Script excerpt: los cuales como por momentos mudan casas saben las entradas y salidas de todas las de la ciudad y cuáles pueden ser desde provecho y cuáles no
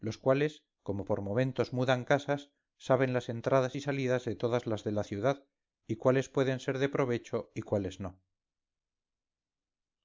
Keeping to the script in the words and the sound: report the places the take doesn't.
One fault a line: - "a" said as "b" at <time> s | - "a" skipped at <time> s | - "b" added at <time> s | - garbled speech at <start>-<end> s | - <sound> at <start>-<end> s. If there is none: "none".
- "desde" said as "de" at 6.8 s